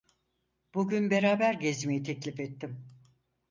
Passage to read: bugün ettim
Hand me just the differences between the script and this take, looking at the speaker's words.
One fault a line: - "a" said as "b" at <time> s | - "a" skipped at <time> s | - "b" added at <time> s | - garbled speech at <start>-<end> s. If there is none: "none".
- "beraber gezmeyi teklif" added at 1.1 s